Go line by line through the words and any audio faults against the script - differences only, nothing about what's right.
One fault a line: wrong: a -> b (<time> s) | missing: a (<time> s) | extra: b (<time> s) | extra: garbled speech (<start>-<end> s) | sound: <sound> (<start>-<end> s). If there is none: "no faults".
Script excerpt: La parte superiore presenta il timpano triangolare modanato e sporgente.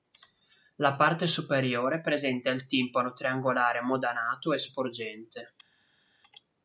no faults